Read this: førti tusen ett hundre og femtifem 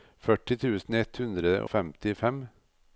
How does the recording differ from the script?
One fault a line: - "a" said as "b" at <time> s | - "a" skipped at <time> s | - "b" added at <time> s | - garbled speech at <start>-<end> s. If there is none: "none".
- "og" skipped at 1.5 s